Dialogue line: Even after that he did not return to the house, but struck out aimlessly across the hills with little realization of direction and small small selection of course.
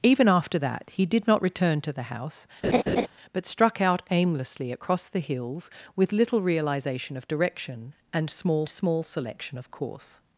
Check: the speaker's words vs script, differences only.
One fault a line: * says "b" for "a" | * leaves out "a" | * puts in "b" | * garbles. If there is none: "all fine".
all fine